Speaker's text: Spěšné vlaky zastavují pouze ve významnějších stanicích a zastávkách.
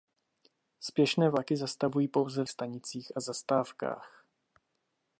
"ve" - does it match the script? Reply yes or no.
no